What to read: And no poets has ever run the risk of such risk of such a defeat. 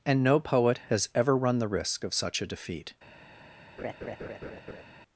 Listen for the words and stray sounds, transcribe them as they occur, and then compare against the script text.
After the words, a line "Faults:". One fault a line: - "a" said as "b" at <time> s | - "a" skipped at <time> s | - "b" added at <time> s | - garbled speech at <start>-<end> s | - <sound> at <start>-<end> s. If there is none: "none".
And no poet has ever run the risk of such a defeat.
Faults:
- "poets" said as "poet" at 0.4 s
- "risk of such" skipped at 2.4 s
- laugh at 3.8-4.8 s